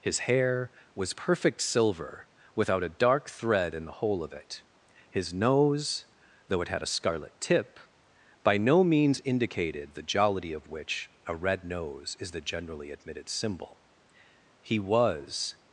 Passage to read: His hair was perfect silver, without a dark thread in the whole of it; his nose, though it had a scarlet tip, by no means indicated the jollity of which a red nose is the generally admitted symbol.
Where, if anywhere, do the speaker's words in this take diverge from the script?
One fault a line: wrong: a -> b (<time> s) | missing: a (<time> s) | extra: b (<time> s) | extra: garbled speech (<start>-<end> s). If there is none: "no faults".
extra: He was (14.6 s)